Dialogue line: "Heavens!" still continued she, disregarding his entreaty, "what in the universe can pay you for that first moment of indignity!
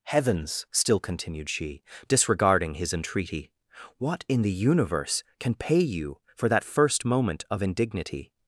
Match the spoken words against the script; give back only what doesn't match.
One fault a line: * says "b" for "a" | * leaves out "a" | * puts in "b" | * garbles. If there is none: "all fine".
all fine